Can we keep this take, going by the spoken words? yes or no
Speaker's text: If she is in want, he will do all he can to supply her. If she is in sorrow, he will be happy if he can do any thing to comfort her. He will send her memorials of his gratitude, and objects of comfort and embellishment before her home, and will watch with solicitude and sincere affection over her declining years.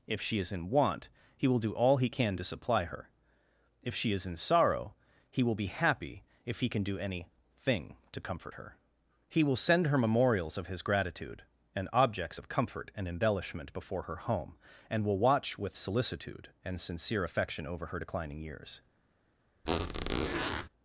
yes